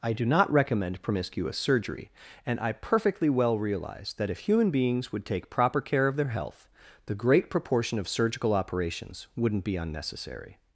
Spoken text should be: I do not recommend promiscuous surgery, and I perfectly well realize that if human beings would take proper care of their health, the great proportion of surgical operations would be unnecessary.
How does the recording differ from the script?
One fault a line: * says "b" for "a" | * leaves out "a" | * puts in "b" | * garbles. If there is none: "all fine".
* says "wouldn't" for "would"